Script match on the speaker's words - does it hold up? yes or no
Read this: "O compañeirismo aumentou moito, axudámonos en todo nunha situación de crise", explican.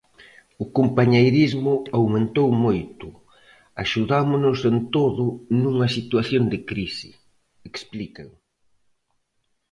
yes